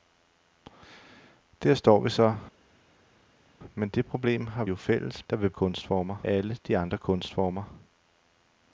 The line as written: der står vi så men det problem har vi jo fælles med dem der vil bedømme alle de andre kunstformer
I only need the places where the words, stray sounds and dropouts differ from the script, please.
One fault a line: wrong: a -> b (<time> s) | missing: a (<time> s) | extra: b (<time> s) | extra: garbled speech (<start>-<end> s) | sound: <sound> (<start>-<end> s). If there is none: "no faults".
missing: vi (4.6 s)
missing: med dem (5.3 s)
wrong: bedømme -> kunstformer (5.5 s)